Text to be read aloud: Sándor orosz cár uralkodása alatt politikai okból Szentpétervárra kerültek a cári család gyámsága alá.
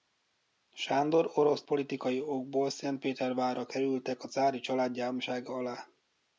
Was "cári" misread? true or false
false